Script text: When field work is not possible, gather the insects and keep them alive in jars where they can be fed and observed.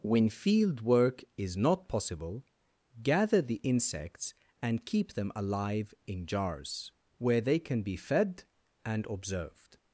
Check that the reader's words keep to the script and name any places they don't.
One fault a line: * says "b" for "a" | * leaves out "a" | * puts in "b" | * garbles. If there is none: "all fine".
all fine